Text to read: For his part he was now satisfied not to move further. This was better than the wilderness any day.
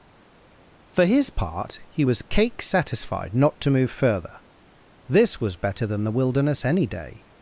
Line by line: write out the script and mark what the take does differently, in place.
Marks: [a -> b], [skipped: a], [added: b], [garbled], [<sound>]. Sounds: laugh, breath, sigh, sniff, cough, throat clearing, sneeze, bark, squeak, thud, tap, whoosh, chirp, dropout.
For his part he was [now -> cake] satisfied not to move further. This was better than the wilderness any day.